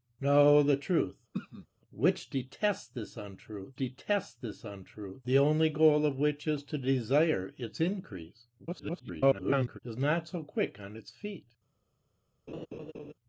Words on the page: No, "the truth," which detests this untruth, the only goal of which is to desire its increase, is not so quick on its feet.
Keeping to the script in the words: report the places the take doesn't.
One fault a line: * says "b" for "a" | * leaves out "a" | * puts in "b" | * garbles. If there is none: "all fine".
* puts in "detests this untruth"
* garbles